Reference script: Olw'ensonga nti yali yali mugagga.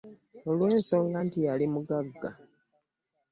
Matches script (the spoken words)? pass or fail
fail